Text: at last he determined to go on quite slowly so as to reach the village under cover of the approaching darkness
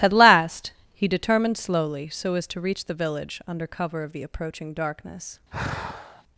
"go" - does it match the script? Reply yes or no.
no